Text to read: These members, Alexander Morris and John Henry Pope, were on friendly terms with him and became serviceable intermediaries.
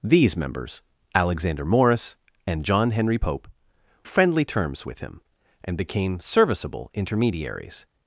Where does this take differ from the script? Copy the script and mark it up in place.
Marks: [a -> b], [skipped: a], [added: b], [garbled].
These members, Alexander Morris and John Henry Pope, [skipped: were on] friendly terms with him and became serviceable intermediaries.